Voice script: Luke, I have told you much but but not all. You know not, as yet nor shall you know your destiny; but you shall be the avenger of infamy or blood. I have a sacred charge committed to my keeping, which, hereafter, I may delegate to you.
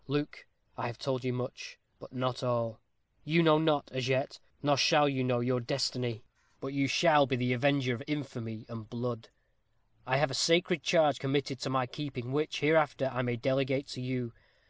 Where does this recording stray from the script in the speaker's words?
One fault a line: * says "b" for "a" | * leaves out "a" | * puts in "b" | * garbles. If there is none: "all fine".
* leaves out "but"
* says "and" for "or"